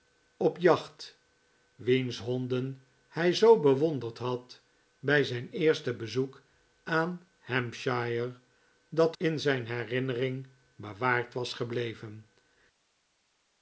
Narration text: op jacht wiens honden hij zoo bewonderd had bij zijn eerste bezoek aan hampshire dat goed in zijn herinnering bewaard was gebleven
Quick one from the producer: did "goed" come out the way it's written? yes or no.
no